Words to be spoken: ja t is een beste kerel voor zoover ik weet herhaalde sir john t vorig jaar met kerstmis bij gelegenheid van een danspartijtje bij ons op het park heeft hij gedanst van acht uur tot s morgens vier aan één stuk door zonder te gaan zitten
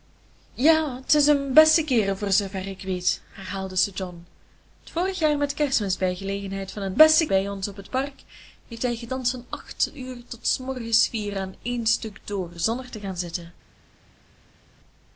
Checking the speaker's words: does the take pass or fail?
fail